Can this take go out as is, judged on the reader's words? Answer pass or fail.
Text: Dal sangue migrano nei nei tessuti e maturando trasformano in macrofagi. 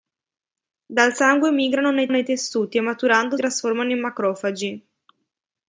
pass